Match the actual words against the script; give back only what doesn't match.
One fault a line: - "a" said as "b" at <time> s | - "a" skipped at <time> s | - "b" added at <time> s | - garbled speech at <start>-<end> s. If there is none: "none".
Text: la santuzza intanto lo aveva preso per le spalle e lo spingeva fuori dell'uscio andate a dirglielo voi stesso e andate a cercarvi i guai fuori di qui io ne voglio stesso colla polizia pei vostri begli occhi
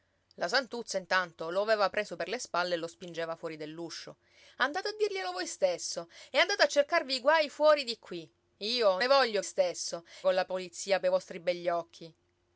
none